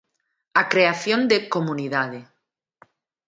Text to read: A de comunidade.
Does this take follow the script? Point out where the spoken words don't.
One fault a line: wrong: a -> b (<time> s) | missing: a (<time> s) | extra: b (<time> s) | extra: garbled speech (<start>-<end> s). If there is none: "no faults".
extra: creación (0.7 s)